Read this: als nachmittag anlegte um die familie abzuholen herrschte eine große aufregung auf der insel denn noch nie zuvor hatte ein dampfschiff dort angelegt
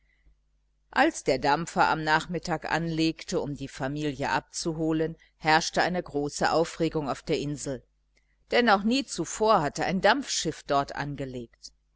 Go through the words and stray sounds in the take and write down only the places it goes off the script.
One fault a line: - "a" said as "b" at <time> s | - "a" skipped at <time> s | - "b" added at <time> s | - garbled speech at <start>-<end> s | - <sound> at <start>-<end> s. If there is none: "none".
- "der dampfer am" added at 1.2 s